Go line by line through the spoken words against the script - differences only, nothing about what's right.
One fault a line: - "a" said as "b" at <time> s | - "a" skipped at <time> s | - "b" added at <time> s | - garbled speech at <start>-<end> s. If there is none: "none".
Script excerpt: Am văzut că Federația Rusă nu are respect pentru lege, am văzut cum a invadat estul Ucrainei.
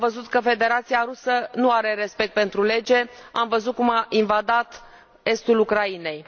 none